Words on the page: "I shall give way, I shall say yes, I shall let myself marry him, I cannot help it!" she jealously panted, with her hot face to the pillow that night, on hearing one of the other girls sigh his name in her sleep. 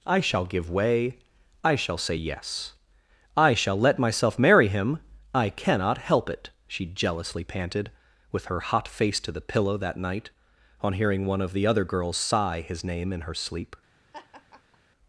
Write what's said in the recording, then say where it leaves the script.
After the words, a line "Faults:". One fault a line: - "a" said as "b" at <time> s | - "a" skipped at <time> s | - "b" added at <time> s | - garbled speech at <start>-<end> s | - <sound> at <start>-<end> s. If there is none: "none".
"I shall give way, I shall say yes, I shall let myself marry him, I cannot help it!" she jealously panted, with her hot face to the pillow that night, on hearing one of the other girls sigh his name in her sleep.
Faults:
- laugh at 14.1-14.8 s